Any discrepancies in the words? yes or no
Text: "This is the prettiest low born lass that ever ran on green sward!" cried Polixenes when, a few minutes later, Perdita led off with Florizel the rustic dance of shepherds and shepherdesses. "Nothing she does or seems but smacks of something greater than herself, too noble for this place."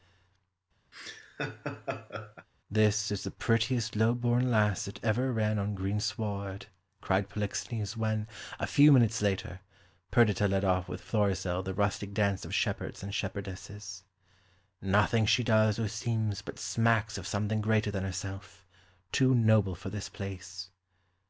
no